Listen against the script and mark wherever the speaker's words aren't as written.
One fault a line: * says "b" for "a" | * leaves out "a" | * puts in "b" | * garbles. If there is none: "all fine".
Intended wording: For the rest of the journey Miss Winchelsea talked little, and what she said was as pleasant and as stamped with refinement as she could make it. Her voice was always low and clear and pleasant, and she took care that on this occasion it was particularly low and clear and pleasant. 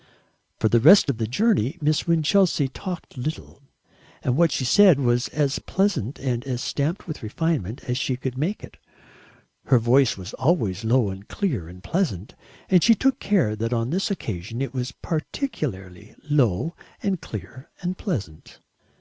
all fine